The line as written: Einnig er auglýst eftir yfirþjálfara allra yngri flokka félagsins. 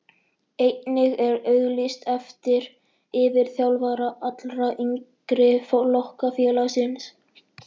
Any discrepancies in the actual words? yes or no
no